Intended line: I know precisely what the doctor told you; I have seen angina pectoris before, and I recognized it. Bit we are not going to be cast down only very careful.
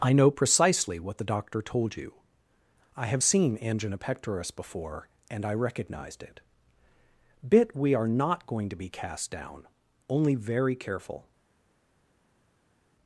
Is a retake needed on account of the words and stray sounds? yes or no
no